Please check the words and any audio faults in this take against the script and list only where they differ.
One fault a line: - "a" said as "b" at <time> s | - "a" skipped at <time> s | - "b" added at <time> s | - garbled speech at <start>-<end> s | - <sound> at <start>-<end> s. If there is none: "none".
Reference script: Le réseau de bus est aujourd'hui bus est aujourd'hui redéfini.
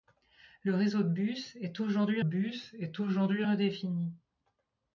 none